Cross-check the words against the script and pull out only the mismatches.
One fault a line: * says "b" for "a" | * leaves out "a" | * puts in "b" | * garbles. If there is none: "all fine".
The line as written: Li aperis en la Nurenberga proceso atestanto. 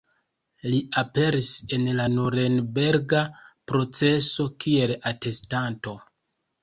* puts in "kiel"